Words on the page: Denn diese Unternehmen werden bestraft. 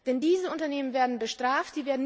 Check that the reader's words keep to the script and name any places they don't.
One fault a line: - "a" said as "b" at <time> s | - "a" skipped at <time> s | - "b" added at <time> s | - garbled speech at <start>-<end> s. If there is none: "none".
none